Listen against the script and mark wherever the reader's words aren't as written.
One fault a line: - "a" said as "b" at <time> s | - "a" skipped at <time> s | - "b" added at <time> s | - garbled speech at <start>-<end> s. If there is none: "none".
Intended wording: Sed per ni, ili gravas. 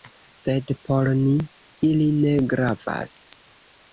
- "per" said as "por" at 0.9 s
- "ne" added at 2.2 s